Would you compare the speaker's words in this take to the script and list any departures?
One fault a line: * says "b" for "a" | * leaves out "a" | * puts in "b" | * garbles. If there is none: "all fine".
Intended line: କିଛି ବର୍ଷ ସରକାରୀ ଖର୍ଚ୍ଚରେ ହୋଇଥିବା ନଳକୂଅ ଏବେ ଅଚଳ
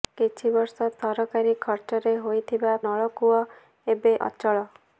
all fine